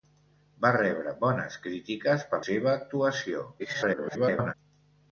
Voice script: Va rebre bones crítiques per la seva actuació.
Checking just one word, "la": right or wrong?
wrong